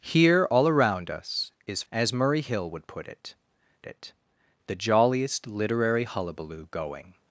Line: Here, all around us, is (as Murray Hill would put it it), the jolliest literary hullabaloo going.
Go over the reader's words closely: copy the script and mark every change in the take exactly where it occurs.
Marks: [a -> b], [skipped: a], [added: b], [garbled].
Here, all around us, is (as Murray Hill would put it it), the jolliest literary hullabaloo going.